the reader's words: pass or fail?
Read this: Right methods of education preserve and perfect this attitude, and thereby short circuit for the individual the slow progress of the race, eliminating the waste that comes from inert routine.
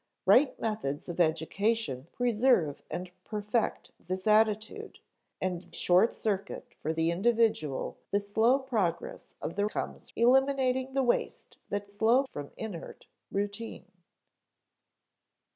fail